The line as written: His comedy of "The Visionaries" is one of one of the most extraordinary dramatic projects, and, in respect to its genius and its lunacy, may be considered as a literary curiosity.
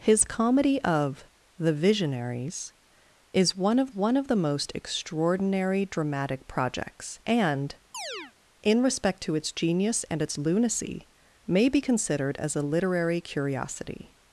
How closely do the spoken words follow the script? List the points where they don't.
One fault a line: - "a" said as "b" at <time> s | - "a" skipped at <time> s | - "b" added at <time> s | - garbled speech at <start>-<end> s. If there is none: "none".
none